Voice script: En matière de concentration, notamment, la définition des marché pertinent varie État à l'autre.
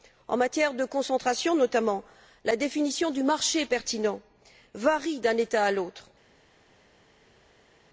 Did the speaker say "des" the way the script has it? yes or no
no